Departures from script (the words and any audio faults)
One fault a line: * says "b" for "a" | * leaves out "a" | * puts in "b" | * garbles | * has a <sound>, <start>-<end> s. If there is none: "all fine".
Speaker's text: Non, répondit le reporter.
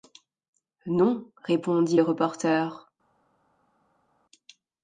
all fine